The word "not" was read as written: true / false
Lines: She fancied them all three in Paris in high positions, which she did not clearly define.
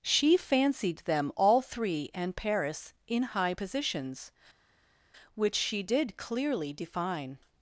false